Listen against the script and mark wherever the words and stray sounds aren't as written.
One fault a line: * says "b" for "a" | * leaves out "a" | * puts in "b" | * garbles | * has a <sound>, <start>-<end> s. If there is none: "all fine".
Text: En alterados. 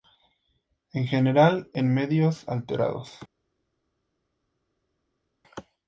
* puts in "general en medios"